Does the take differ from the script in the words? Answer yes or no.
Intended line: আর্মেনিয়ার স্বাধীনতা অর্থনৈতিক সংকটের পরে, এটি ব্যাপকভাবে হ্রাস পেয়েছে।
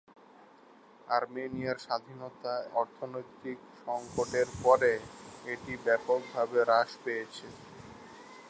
no